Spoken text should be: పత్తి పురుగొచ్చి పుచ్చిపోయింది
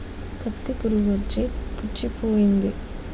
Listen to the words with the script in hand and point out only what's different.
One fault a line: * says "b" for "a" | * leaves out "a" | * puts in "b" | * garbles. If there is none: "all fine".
all fine